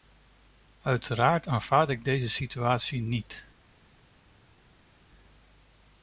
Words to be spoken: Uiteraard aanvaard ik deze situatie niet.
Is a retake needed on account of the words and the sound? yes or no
no